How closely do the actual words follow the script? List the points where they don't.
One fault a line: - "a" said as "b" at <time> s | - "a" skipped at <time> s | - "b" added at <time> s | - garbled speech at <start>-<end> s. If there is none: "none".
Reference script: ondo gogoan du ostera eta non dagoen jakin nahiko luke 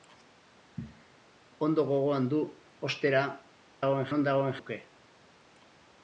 - "eta" said as "dagoen" at 3.8 s
- "jakin nahiko" skipped at 4.6 s